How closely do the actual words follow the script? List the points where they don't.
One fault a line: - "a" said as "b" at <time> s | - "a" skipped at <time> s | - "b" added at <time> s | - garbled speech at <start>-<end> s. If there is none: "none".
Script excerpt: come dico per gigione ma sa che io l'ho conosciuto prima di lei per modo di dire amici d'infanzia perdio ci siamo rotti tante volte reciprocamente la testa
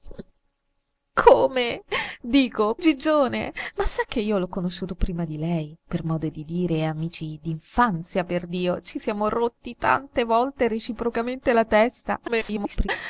- "per" skipped at 2.8 s
- garbled speech at 12.3-12.9 s